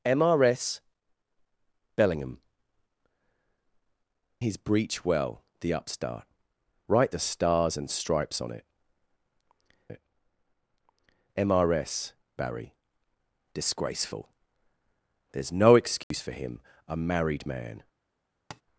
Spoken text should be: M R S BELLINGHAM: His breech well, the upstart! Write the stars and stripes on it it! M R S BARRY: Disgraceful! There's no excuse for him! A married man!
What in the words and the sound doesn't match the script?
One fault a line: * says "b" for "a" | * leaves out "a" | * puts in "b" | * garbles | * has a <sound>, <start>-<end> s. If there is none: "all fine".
* has a dropout, 16.0-16.1 s
* has a tap, 18.5-18.6 s